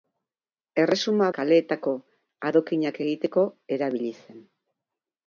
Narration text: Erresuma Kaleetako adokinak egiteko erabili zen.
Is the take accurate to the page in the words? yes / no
yes